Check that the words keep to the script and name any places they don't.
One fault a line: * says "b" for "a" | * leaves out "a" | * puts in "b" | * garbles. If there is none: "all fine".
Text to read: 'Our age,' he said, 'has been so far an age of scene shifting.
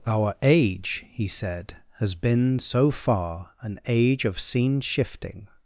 all fine